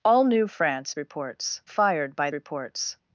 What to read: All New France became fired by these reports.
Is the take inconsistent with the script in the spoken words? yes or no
yes